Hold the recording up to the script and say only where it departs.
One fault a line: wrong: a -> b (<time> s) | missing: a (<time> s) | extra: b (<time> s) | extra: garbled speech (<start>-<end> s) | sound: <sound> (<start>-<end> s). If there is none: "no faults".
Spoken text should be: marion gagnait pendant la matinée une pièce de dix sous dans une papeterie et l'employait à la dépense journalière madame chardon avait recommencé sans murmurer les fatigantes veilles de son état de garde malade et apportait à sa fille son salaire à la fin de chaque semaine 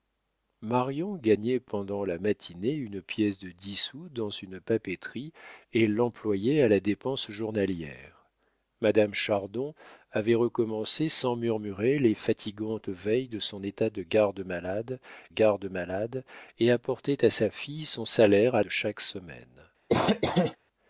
extra: garde malade (15.3 s)
missing: la fin (18.6 s)
sound: cough (19.9-20.6 s)